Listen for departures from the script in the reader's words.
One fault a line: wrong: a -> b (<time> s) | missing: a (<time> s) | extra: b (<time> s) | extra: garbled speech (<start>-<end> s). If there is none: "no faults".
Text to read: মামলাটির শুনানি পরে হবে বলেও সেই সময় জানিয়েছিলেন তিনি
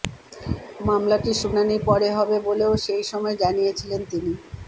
no faults